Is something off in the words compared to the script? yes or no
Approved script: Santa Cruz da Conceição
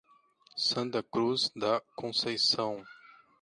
no